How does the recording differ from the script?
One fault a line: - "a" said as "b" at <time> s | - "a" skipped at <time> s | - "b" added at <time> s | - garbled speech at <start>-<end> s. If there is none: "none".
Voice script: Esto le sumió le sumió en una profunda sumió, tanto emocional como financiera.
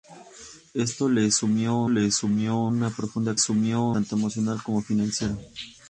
none